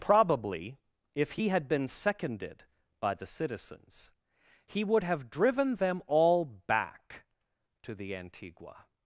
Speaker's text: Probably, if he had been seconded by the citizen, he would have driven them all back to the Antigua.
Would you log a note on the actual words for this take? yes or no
yes